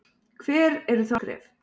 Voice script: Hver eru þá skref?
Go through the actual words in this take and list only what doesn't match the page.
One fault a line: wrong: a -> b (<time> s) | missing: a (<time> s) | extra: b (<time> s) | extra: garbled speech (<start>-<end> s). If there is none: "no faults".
no faults